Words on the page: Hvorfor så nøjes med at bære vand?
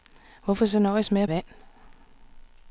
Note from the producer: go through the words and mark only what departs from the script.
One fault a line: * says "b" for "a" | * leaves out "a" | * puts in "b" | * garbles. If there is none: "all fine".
* leaves out "bære"